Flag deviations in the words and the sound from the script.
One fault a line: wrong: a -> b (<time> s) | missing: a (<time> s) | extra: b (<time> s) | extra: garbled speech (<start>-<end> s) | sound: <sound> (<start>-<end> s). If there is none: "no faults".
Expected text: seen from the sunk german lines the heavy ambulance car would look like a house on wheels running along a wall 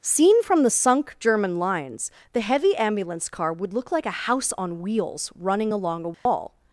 sound: dropout (6.1-6.3 s)